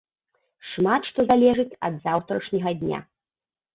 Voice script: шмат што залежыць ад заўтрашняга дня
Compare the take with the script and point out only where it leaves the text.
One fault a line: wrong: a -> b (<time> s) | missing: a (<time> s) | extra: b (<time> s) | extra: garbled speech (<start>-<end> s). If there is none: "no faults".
no faults